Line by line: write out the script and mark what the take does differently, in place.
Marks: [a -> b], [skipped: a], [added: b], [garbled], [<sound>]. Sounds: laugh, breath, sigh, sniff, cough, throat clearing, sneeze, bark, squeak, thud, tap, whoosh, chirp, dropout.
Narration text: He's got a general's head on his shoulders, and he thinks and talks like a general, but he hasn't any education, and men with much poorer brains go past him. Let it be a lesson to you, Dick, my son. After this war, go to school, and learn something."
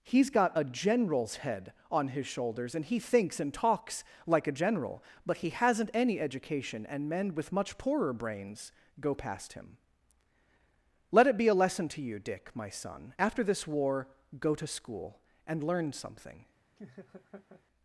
He's got a general's head on his shoulders, and he thinks and talks like a general, but he hasn't any education, and men with much poorer brains go past him. Let it be a lesson to you, Dick, my son. After this war, go to school, and learn something." [laugh]